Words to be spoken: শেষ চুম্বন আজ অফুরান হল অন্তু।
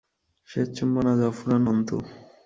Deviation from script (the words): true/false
true